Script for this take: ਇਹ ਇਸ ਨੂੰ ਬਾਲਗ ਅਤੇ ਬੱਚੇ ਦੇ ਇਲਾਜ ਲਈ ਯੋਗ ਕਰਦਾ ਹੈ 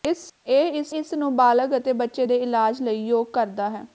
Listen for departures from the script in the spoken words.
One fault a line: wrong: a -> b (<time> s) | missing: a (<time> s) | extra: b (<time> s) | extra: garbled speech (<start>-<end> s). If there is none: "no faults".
extra: ਇਸ (0.9 s)